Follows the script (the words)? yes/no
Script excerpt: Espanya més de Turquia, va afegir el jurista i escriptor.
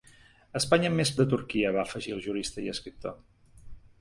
yes